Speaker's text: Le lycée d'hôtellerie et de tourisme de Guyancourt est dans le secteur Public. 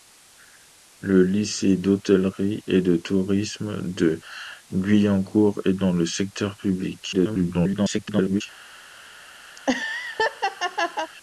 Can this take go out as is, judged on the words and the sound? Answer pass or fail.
fail